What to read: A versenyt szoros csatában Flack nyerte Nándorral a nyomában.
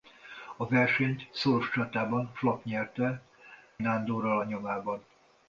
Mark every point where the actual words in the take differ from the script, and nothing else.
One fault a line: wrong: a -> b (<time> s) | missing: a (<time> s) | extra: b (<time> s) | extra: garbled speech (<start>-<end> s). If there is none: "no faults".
no faults